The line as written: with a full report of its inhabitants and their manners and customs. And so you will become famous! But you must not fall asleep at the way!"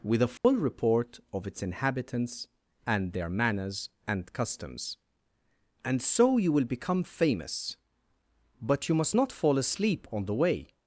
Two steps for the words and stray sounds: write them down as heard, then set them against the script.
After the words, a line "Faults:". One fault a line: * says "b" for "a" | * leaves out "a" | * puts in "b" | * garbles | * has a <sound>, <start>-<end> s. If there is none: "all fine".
with a full report of its inhabitants and their manners and customs. And so you will become famous! But you must not fall asleep on the way!"
Faults:
* has a dropout, 0.4-0.4 s
* says "on" for "at"